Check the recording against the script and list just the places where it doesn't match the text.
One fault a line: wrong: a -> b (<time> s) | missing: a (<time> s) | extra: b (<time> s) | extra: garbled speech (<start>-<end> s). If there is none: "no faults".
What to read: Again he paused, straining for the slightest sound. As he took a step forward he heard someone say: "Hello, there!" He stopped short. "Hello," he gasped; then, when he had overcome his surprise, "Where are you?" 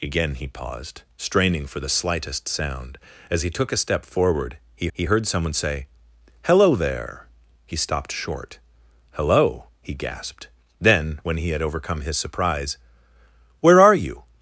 extra: he (4.9 s)